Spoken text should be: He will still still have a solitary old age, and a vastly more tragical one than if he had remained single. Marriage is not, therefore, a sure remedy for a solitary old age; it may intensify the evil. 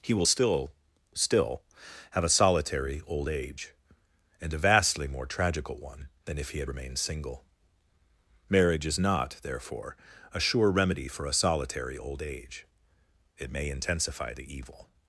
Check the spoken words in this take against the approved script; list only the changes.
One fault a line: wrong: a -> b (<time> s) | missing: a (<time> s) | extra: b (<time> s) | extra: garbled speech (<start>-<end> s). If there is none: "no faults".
no faults